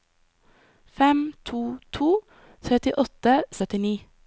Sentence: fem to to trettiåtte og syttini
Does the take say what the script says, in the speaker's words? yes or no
yes